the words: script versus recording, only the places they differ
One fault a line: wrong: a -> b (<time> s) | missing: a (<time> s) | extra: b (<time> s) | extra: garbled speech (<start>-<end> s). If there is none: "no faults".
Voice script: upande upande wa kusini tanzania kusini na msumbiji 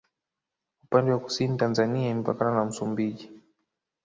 missing: upande (1.1 s)
wrong: kusini -> imepakana (2.1 s)